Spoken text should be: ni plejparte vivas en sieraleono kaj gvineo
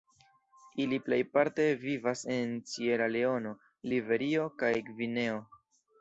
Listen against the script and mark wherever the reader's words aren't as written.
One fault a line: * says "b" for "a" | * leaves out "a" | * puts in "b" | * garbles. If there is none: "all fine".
* says "ili" for "ni"
* puts in "liberio"